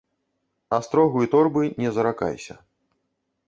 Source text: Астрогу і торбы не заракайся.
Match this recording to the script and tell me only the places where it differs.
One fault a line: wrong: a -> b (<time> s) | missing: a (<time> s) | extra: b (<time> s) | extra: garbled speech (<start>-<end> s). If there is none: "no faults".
no faults